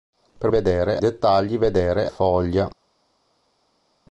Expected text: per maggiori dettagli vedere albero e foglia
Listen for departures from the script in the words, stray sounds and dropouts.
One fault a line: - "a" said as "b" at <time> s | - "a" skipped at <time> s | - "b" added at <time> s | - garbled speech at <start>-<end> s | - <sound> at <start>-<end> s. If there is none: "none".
- "maggiori" said as "vedere" at 0.5 s
- "albero" skipped at 2.1 s